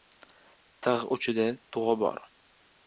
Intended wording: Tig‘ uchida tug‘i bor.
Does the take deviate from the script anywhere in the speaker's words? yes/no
no